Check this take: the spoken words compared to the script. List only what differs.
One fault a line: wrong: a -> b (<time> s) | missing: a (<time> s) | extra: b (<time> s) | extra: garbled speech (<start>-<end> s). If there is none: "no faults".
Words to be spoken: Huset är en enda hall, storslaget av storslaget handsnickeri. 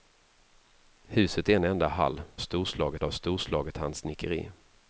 no faults